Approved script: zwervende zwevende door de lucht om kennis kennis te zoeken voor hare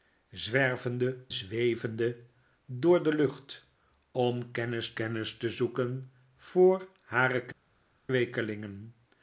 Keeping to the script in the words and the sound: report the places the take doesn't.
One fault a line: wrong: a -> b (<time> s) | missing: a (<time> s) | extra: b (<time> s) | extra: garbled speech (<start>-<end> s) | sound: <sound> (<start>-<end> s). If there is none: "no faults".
no faults